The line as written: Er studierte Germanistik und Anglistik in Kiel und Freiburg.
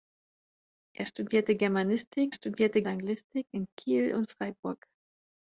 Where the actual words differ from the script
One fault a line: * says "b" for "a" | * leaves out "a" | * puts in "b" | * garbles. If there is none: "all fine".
* says "studierte" for "und"